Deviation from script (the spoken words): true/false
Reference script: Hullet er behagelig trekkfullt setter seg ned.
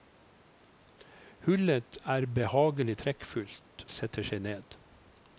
false